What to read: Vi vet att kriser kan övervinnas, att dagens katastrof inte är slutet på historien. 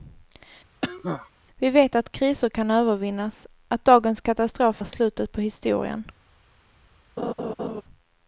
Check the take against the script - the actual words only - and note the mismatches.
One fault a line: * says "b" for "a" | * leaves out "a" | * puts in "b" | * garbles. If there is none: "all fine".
* leaves out "inte"